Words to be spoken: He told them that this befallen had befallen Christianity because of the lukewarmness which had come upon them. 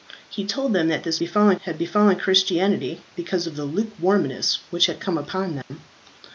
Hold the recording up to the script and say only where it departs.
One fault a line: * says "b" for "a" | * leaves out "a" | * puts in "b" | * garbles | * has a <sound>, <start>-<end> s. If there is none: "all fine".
* has a dropout, 5.6-5.7 s